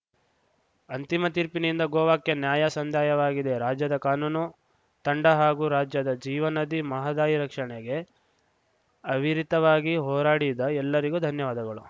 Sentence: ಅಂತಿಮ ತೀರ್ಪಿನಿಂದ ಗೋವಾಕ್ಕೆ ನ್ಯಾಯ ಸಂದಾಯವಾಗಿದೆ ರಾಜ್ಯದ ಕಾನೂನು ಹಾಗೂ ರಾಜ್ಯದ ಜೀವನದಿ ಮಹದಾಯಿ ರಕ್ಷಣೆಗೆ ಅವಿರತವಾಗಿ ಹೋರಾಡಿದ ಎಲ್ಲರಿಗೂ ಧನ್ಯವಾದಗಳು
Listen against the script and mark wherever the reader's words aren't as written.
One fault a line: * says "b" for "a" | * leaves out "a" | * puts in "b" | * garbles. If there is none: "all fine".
* puts in "ತಂಡ"